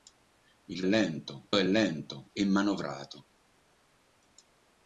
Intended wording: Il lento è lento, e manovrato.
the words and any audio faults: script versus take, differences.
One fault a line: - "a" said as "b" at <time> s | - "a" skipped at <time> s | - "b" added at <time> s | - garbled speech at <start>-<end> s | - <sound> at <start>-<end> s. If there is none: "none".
none